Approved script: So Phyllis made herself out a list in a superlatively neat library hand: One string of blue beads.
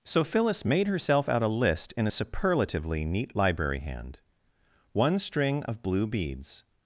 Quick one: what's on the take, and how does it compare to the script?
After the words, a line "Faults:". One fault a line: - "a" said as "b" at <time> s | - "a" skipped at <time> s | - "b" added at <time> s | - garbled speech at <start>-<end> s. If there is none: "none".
So Phyllis made herself out a list in a superlatively neat library hand: One string of blue beads.
Faults:
none